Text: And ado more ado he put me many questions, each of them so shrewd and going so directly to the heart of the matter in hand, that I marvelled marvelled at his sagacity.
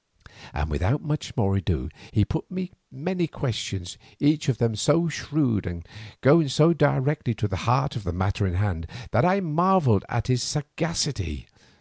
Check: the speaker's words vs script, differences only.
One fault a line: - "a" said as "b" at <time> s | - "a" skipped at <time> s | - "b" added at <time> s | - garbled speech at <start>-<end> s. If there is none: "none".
- "ado" said as "without" at 0.7 s
- "marvelled" skipped at 10.0 s